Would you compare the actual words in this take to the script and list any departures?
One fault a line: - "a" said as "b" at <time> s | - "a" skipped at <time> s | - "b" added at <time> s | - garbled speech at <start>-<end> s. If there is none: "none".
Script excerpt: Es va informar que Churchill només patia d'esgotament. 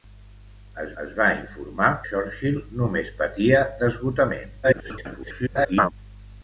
- "es" added at 1.0 s
- "que" skipped at 1.9 s
- garbled speech at 4.6-5.9 s